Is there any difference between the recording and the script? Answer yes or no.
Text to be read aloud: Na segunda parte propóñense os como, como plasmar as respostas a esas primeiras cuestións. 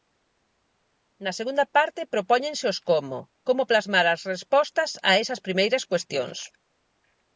no